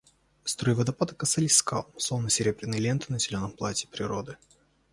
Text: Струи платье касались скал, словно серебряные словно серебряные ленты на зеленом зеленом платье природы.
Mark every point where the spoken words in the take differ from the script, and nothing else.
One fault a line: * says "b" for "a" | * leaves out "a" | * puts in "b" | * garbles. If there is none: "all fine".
* says "водопада" for "платье"
* leaves out "словно серебряные"
* leaves out "зеленом"